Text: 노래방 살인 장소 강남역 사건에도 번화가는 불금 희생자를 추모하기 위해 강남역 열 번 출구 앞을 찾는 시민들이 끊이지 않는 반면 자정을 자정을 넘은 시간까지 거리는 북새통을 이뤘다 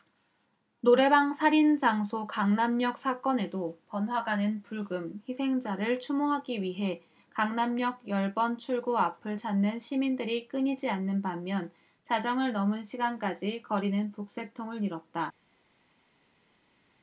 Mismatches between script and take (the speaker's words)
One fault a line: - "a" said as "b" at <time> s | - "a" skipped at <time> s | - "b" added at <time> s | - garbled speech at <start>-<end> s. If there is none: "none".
- "자정을" skipped at 12.5 s